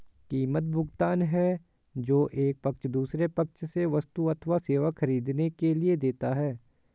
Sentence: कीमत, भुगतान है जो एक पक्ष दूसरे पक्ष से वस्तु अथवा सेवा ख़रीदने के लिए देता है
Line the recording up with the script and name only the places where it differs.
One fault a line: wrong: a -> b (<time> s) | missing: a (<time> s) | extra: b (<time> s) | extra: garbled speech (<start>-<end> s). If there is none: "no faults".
no faults